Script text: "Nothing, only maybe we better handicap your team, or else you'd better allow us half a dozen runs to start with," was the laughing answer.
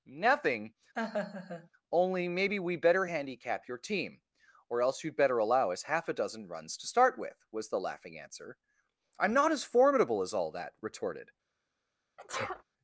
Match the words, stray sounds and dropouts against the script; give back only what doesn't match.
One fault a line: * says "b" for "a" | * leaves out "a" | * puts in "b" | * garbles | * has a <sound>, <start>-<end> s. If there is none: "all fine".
* has a laugh, 1.0-1.7 s
* puts in "I'm not as formidable as all that retorted"
* has a sneeze, 12.2-12.6 s